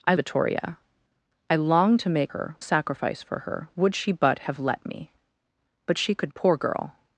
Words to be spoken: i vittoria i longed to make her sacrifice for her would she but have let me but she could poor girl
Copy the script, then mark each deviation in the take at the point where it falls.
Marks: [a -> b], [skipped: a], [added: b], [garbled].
i vittoria i longed to make her sacrifice for her would she but have let me but she could poor girl